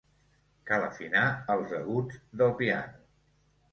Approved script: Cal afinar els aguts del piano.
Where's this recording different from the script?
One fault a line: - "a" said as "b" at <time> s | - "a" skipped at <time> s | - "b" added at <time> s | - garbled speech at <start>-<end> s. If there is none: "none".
none